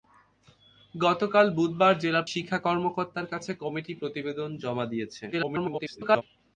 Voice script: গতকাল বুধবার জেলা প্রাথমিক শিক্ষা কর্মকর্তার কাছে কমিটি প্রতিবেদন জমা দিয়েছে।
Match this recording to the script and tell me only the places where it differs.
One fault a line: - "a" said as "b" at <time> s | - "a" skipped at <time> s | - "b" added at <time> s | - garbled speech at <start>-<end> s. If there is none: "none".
- "প্রাথমিক" skipped at 2.2 s
- garbled speech at 5.3-6.2 s